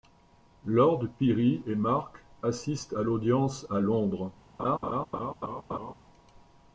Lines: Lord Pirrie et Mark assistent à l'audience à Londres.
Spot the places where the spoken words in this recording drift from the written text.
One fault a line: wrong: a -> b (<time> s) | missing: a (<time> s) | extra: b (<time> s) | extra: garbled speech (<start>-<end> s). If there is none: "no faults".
no faults